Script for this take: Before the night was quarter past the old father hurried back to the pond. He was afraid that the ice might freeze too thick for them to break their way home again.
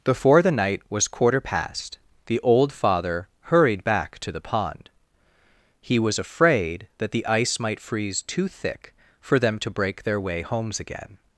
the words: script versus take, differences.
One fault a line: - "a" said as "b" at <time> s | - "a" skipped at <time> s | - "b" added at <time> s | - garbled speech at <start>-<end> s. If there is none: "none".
- "home" said as "homes" at 10.4 s